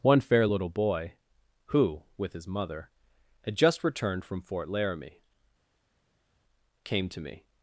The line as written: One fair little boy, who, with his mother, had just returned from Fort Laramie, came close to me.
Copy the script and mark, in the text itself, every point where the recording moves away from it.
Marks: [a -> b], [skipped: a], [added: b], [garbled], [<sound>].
One fair little boy, who, with his mother, had just returned from Fort Laramie, came [skipped: close] to me.